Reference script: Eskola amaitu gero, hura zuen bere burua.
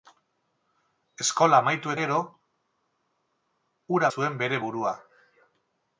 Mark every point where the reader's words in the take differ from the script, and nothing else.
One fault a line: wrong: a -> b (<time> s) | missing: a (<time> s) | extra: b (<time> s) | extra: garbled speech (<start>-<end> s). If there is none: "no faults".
no faults